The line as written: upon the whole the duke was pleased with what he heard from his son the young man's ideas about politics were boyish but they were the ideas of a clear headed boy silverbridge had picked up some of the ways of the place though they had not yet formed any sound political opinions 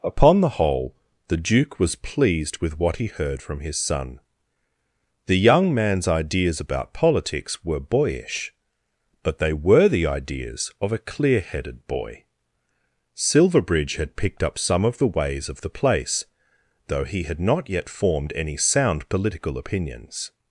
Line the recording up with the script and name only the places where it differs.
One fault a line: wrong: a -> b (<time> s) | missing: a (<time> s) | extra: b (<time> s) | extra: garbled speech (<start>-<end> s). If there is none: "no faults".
wrong: they -> he (17.0 s)